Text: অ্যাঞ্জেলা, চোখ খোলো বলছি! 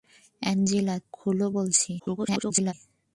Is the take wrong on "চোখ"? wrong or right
wrong